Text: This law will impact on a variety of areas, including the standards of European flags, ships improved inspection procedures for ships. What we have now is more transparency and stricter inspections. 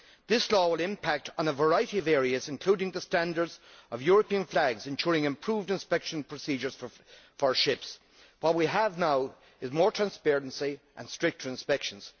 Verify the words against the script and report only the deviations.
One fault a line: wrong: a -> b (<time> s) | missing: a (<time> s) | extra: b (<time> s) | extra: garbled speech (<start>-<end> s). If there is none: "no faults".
wrong: ships -> ensuring (4.9 s)